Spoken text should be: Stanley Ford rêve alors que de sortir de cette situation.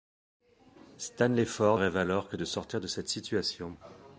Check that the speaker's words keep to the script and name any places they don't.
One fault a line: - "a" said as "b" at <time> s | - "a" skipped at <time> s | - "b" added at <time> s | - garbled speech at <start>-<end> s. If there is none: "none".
none